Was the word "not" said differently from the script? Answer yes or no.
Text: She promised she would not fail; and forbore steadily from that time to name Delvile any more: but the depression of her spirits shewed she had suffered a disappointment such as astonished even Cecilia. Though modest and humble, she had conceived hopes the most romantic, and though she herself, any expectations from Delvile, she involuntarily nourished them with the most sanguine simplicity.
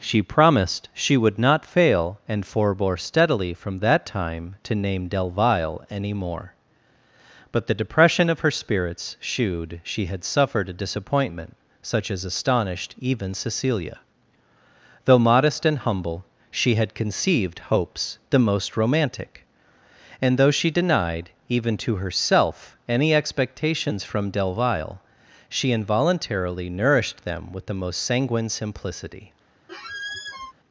no